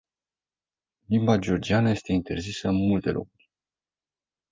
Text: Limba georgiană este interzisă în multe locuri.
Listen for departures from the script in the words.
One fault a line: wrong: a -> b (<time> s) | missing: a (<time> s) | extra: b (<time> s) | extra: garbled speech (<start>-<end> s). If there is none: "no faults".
no faults